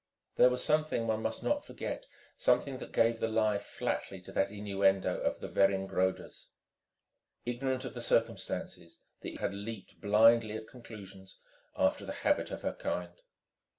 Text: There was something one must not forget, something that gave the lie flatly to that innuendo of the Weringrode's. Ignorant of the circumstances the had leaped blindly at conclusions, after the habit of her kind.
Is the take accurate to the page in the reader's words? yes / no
yes